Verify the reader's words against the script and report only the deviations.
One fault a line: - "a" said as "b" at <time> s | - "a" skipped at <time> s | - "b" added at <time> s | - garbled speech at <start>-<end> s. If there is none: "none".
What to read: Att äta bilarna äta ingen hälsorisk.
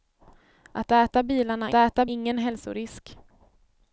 none